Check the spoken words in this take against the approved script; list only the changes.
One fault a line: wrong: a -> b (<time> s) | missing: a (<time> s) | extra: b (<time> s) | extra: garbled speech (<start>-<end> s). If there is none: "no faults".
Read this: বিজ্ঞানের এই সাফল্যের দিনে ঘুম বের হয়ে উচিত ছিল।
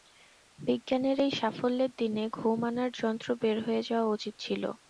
extra: আনার যন্ত্র (2.7 s)
extra: যাওয়া (3.9 s)